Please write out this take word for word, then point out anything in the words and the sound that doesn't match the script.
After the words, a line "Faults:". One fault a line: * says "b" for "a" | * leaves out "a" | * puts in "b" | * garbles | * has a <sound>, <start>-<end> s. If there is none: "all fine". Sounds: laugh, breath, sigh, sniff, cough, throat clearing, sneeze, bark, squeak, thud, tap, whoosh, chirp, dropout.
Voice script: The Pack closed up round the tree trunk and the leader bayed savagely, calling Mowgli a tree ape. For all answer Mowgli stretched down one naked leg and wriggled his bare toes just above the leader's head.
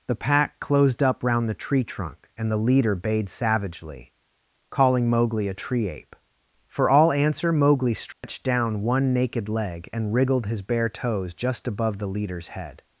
The Pack closed up round the tree trunk and the leader bayed savagely, calling Mowgli a tree ape. For all answer Mowgli stretched down one naked leg and wriggled his bare toes just above the leader's head.
Faults:
* has a dropout, 8.1-8.2 s